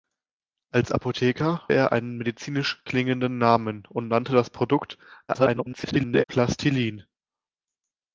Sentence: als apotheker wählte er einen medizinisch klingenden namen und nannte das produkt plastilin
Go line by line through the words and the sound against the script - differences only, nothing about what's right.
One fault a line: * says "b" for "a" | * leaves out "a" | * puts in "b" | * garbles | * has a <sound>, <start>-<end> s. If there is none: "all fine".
* leaves out "wählte"
* garbles